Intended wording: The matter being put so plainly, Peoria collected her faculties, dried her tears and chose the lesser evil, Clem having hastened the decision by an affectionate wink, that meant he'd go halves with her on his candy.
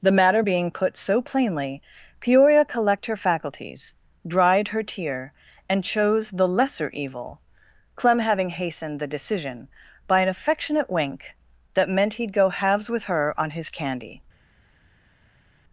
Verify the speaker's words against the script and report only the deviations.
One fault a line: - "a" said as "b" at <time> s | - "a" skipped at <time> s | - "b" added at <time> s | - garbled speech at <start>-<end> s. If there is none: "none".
- "collected" said as "collect" at 2.6 s
- "tears" said as "tear" at 4.8 s